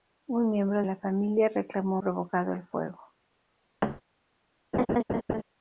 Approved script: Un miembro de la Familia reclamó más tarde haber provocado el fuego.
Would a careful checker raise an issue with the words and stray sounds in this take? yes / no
yes